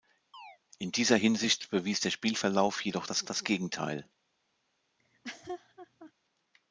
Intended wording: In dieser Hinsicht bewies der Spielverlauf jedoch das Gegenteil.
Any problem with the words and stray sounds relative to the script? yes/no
yes